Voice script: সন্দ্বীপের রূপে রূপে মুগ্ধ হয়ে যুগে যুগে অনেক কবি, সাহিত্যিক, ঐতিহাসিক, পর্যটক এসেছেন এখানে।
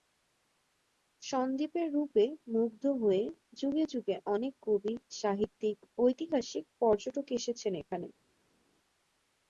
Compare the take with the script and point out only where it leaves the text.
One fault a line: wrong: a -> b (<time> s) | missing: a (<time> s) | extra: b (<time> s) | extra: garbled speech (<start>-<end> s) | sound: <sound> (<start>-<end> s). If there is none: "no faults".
missing: রূপে (2.2 s)